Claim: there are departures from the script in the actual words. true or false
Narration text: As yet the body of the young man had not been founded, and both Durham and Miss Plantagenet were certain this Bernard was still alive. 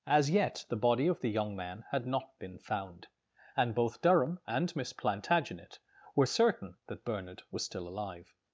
true